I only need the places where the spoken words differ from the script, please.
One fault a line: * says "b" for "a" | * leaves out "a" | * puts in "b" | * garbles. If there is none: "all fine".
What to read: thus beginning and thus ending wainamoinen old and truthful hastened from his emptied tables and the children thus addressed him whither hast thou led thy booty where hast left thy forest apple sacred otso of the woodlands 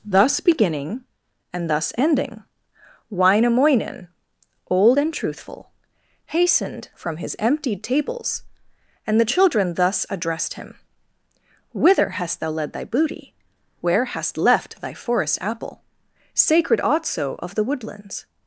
all fine